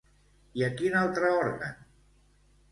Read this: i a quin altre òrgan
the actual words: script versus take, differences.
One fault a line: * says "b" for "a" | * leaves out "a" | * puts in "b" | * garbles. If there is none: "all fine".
all fine